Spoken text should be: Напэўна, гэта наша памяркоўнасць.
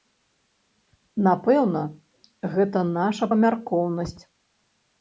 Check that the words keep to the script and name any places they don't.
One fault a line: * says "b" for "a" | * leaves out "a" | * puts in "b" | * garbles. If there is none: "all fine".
all fine